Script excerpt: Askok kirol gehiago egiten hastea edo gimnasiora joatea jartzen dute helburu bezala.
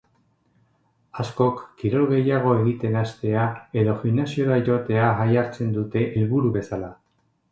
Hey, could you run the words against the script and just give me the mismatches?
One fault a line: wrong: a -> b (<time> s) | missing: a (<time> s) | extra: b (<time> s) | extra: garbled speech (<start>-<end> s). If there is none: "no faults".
no faults